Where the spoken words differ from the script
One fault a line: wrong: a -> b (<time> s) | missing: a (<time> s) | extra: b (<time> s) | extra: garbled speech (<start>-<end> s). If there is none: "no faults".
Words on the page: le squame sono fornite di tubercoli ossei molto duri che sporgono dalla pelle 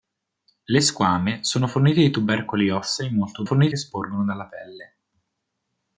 wrong: duri -> fornite (3.4 s)